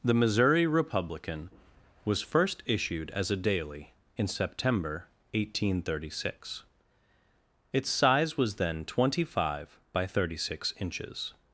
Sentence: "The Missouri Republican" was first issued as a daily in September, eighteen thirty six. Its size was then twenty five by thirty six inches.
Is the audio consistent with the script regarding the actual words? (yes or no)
yes